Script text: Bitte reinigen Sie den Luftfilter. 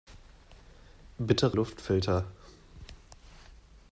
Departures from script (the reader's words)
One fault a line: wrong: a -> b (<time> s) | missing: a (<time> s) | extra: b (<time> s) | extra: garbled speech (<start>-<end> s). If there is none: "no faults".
missing: reinigen Sie den (1.6 s)